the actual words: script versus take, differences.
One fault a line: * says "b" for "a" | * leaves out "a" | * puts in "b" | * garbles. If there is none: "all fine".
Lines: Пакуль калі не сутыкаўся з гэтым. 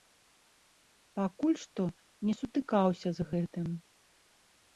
* says "што" for "калі"